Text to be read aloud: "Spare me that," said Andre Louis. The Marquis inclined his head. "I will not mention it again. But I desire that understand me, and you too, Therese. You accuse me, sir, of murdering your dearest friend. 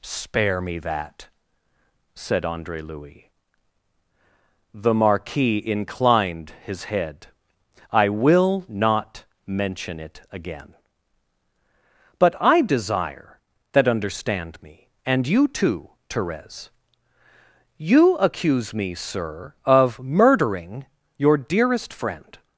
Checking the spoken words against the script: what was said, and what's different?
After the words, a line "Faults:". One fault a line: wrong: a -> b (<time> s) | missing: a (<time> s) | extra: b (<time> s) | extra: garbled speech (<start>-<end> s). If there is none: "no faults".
"Spare me that," said Andre Louis. The Marquis inclined his head. "I will not mention it again. But I desire that understand me, and you too, Therese. You accuse me, sir, of murdering your dearest friend.
Faults:
no faults